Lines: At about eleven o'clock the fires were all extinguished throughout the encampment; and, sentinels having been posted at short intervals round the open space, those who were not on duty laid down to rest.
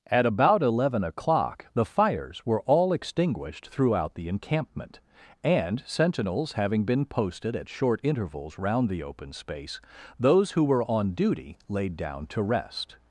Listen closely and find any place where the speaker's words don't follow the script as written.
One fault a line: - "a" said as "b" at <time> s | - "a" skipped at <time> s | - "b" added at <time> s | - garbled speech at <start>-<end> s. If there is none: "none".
- "not" skipped at 10.8 s